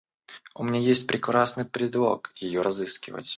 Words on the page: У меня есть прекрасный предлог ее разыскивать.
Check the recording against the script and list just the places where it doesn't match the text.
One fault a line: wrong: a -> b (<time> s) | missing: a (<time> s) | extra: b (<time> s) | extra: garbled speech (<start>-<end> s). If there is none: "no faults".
no faults